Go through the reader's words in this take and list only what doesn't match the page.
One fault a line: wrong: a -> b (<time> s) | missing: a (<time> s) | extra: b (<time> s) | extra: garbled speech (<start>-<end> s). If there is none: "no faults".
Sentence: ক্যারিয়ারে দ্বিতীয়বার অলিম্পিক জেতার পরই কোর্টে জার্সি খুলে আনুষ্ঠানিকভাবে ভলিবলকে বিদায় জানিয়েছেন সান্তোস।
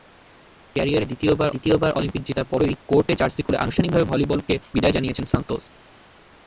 extra: দ্বিতীয়বার (1.5 s)